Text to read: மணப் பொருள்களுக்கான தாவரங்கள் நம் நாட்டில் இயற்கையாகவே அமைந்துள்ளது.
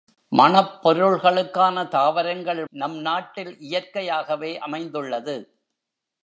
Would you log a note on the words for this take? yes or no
no